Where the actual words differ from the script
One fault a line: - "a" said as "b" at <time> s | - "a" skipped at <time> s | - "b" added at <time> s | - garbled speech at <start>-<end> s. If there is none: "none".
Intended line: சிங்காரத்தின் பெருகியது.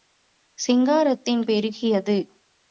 none